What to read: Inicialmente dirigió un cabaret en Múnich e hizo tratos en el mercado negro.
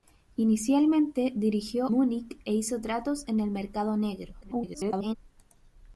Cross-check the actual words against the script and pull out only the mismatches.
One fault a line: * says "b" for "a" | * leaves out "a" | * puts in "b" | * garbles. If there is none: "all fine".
* leaves out "un cabaret en"
* garbles